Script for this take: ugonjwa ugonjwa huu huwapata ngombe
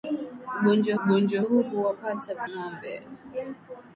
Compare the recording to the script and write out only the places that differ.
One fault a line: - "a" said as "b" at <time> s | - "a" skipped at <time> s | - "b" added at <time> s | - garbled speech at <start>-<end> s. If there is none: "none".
none